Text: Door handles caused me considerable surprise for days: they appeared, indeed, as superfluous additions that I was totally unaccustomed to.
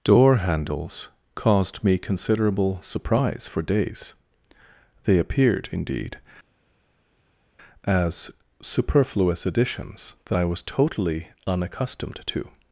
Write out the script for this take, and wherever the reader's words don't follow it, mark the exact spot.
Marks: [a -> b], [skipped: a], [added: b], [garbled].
Door handles caused me considerable surprise for days: they appeared, indeed, as superfluous additions that I was totally unaccustomed to.